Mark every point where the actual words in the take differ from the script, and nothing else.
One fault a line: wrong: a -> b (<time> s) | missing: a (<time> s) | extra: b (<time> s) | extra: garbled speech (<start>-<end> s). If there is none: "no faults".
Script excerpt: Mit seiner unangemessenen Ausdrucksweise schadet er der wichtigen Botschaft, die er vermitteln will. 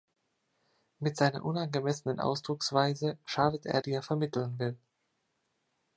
missing: der wichtigen Botschaft (3.8 s)